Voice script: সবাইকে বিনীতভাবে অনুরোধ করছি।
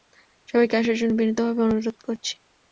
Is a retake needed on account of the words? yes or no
yes